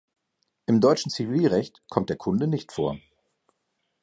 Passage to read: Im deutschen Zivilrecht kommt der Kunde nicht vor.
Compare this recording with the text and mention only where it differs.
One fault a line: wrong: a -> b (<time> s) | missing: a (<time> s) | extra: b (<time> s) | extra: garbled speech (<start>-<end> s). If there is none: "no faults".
no faults